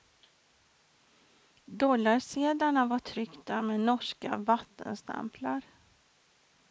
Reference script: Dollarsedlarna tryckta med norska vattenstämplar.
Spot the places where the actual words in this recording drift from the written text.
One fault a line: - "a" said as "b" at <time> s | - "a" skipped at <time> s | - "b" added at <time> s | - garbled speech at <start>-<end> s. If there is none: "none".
- "var" added at 2.9 s